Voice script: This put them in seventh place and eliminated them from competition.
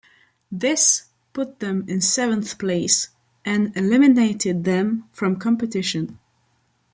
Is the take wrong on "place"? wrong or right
right